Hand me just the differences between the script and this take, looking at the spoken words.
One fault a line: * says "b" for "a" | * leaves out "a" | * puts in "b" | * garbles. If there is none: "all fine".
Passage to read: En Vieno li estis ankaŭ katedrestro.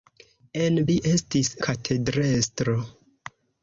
* leaves out "Vieno"
* leaves out "ankaŭ"